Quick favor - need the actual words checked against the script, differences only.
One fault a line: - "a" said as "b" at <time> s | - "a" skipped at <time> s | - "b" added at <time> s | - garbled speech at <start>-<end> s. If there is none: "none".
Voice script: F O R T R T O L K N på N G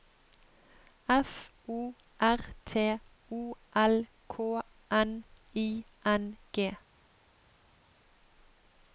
- "R T" skipped at 3.0 s
- "på" said as "I" at 5.5 s